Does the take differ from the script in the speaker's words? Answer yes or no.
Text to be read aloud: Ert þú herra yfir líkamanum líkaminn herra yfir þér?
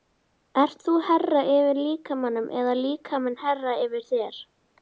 yes